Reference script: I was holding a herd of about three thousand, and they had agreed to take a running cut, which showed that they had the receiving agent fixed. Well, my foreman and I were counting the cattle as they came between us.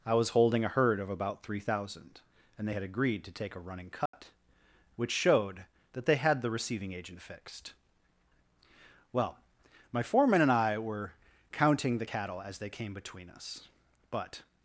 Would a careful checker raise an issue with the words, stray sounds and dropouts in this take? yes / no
yes